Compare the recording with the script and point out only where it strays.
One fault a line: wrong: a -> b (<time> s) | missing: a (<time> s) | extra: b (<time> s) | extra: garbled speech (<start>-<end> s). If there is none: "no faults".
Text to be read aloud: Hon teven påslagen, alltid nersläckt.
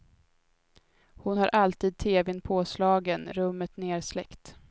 extra: har alltid (1.4 s)
wrong: alltid -> rummet (3.3 s)